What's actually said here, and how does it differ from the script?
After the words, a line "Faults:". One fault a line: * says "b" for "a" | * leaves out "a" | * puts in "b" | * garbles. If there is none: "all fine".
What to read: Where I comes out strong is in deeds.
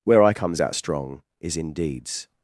Where I comes out strong is in deeds.
Faults:
all fine